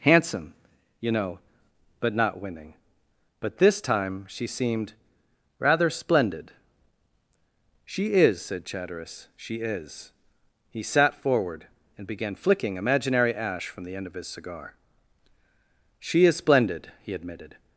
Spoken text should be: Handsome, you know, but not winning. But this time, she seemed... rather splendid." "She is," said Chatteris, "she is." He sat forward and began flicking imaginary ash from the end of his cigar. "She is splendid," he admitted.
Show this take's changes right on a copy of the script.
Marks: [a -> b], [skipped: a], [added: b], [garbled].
Handsome, you know, but not winning. But this time, she seemed... rather splendid." "She is," said Chatteris, "she is." He sat forward and began flicking imaginary ash from the end of his cigar. "She is splendid," he admitted.